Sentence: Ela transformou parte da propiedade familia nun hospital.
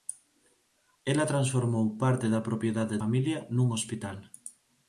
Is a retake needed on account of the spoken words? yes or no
no